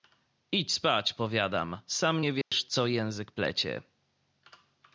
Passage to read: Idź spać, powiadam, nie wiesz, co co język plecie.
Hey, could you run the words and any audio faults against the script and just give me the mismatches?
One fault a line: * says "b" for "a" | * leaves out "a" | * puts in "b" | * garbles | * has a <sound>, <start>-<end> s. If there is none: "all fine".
* puts in "sam"
* has a dropout, 2.4-2.5 s
* leaves out "co"